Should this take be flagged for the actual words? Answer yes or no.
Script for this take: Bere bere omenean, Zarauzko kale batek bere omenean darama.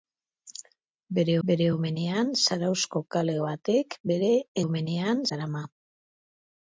no